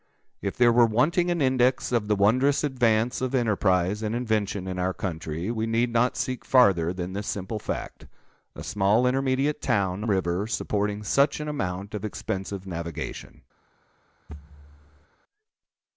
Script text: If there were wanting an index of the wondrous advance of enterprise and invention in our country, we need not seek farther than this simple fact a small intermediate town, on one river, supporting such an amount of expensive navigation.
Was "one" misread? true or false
true